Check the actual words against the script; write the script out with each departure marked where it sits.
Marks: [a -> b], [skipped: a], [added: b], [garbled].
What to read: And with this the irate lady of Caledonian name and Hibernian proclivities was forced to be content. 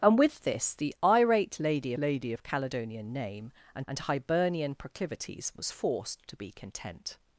And with this the irate lady [added: lady] of Caledonian name and [added: and] Hibernian proclivities was forced to be content.